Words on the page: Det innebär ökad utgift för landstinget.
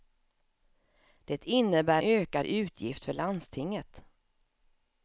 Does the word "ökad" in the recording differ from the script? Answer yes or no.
no